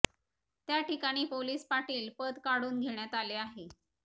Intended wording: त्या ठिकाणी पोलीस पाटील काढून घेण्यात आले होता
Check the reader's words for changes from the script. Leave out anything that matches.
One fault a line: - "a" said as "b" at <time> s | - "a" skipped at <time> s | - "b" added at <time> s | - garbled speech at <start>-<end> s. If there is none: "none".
- "पद" added at 2.2 s
- "होता" said as "आहे" at 3.3 s